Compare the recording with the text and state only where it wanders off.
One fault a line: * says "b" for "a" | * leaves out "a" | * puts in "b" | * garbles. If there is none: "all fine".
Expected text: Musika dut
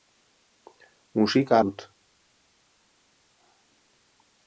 all fine